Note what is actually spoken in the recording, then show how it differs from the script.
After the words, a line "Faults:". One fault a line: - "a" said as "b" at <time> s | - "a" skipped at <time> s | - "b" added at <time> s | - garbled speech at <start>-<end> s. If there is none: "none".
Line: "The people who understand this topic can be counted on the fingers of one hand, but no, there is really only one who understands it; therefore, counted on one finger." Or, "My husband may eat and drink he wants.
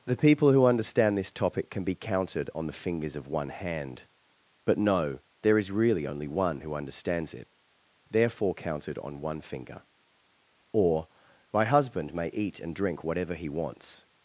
"The people who understand this topic can be counted on the fingers of one hand, but no, there is really only one who understands it; therefore, counted on one finger." Or, "My husband may eat and drink whatever he wants.
Faults:
- "whatever" added at 13.0 s